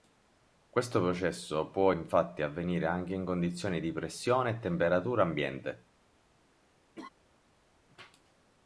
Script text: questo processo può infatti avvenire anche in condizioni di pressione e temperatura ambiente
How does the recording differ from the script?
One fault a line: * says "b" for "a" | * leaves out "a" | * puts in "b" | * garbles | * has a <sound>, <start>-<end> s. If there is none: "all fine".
* has a laugh, 7.0-7.1 s